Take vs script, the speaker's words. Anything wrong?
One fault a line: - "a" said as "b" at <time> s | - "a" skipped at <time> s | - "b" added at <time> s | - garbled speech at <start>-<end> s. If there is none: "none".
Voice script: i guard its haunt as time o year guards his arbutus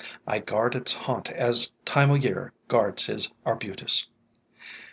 none